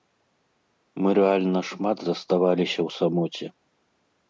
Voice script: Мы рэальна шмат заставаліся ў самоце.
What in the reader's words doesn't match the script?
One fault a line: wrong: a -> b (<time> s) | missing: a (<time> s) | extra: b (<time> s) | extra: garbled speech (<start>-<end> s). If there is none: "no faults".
no faults